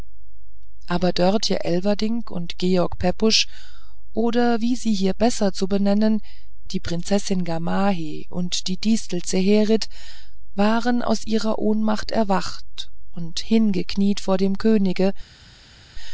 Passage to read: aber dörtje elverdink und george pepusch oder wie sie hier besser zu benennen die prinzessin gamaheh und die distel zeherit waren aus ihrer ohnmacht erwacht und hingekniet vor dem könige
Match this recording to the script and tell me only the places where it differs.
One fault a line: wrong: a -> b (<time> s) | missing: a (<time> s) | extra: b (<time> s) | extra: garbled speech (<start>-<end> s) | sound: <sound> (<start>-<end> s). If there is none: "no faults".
no faults